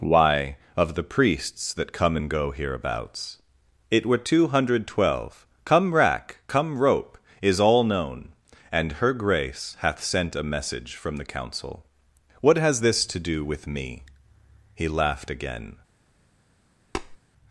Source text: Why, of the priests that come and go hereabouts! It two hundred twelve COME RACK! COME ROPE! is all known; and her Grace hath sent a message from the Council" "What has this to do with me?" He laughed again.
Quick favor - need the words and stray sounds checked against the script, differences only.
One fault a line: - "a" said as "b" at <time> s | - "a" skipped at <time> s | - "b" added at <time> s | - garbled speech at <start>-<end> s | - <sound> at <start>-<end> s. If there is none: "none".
- "were" added at 4.1 s
- tap at 16.9-17.2 s